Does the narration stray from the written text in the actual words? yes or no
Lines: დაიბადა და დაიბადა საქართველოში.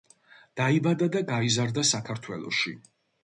yes